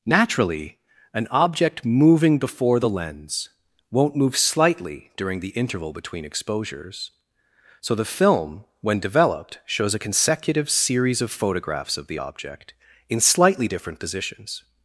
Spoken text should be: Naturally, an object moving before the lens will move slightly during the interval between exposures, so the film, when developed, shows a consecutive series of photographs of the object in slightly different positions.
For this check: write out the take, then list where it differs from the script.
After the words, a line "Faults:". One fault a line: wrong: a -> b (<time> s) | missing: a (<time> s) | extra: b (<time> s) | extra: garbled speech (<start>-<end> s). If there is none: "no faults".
Naturally, an object moving before the lens won't move slightly during the interval between exposures, so the film, when developed, shows a consecutive series of photographs of the object in slightly different positions.
Faults:
wrong: will -> won't (3.9 s)